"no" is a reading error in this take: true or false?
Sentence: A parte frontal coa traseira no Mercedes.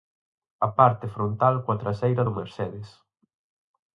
true